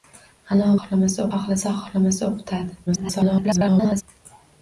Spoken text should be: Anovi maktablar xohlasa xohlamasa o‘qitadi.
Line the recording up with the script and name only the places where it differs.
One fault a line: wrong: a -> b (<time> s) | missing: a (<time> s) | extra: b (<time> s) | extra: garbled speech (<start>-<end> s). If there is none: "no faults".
wrong: maktablar -> xohlamasa (0.8 s)
extra: garbled speech (2.9-4.0 s)